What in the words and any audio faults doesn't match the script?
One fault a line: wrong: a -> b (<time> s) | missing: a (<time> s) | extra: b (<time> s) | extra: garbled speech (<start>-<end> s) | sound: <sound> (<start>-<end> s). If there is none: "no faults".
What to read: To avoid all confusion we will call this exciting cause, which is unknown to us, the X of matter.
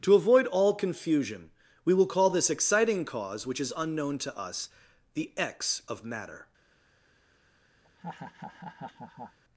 sound: laugh (7.8-9.4 s)